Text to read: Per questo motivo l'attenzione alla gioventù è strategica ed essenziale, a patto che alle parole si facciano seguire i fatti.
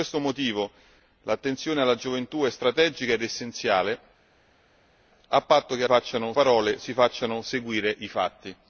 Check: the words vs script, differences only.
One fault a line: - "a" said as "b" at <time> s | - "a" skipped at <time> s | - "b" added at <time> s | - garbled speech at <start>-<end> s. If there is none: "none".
- "alle" said as "facciano" at 5.8 s